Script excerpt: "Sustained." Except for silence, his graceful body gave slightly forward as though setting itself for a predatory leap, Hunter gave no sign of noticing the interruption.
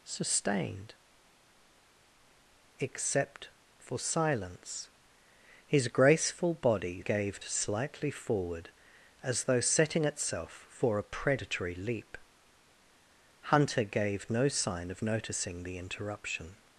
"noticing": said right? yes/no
yes